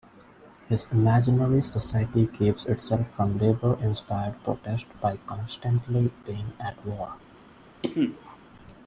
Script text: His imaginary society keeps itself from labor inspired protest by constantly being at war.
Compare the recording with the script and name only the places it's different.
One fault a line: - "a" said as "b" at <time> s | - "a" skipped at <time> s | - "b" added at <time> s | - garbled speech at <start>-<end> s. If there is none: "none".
none